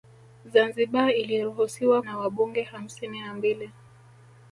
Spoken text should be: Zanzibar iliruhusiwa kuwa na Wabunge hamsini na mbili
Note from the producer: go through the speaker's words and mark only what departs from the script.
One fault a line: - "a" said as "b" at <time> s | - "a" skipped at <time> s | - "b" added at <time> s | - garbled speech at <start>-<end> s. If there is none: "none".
- "kuwa" skipped at 2.0 s